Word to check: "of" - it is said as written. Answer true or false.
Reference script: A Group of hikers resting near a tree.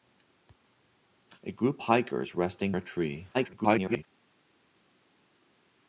false